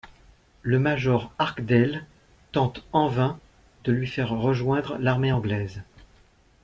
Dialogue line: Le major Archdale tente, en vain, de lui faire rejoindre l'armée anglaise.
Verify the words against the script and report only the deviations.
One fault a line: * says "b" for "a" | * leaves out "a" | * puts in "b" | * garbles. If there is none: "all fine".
all fine